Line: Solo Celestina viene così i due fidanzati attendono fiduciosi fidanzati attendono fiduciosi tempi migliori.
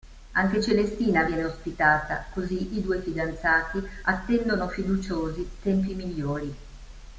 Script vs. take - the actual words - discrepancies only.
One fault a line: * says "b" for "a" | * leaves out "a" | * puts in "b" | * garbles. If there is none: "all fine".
* says "Anche" for "Solo"
* puts in "ospitata"
* leaves out "fidanzati attendono fiduciosi"